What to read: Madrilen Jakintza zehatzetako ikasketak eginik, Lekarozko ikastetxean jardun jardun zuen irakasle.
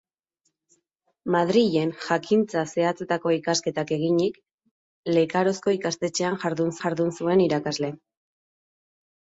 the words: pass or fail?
pass